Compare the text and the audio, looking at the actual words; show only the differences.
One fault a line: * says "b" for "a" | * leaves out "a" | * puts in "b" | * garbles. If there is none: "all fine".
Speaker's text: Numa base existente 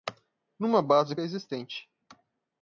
all fine